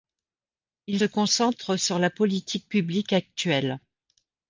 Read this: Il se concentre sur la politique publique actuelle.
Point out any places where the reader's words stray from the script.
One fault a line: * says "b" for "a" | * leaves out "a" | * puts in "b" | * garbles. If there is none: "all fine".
* leaves out "se"